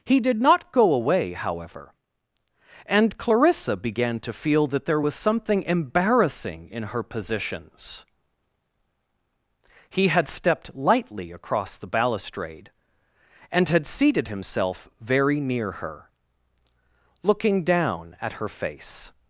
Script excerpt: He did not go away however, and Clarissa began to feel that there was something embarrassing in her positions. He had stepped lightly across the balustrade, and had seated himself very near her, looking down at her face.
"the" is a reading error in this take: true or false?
false